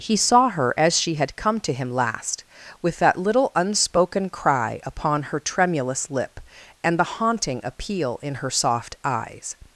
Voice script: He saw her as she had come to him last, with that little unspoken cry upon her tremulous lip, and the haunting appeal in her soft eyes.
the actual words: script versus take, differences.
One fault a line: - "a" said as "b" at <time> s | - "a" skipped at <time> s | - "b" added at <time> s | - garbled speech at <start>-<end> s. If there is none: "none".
none